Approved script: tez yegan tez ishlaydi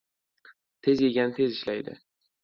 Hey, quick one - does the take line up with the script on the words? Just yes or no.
yes